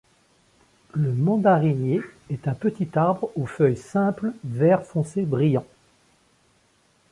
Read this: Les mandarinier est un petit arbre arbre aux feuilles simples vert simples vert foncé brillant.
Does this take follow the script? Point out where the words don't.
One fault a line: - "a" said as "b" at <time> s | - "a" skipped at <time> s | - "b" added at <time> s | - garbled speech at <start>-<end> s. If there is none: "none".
- "Les" said as "Le" at 0.9 s
- "arbre" skipped at 3.3 s
- "simples vert" skipped at 4.8 s